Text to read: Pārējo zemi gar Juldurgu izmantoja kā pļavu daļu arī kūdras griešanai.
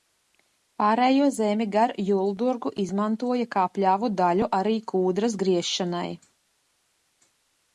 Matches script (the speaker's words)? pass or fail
pass